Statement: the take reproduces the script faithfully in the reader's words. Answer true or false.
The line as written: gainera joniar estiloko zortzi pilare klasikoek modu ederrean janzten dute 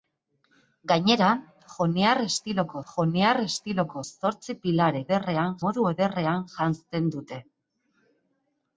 false